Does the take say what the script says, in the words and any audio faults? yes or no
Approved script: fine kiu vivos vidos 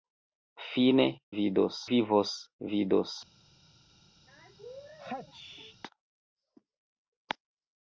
no